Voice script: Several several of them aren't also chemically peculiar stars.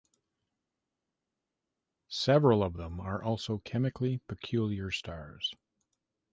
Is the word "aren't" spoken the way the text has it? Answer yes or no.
no